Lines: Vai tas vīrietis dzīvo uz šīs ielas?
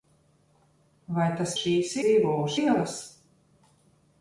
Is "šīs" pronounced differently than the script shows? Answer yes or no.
yes